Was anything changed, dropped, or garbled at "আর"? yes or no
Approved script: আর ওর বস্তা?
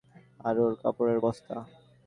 no